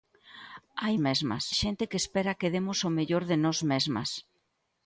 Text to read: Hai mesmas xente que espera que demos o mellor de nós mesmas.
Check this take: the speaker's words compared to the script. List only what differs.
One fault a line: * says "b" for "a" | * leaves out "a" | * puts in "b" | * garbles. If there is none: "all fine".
all fine